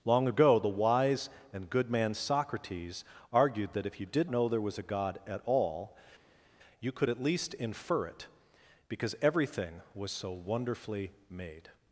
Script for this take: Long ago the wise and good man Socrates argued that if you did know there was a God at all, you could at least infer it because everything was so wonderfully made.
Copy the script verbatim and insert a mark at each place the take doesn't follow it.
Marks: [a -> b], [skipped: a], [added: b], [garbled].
Long ago the wise and good man Socrates argued that if you did know there was a God at all, you could at least infer it because everything was so wonderfully made.